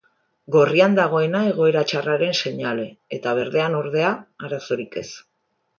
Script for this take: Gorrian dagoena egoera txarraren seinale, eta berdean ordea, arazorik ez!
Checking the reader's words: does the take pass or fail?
pass